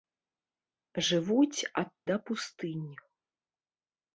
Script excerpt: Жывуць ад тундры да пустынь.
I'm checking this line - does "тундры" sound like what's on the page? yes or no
no